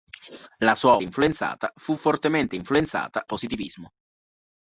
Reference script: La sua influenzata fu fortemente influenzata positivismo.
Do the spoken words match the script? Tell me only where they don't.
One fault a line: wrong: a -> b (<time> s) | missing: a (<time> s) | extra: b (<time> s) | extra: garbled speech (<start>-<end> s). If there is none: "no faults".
no faults